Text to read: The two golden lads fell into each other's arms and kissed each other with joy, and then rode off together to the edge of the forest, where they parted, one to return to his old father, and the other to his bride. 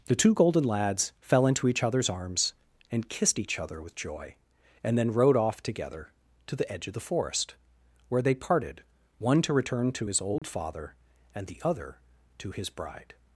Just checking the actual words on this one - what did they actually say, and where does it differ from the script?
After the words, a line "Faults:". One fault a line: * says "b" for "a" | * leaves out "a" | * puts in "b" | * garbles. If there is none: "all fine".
The two golden lads fell into each other's arms and kissed each other with joy, and then rode off together to the edge of the forest, where they parted, one to return to his old father, and the other to his bride.
Faults:
all fine